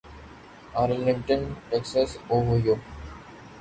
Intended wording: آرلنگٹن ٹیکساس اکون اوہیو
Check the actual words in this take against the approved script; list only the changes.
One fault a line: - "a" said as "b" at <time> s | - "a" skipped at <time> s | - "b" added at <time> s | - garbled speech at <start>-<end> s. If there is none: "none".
- "اکون" skipped at 2.1 s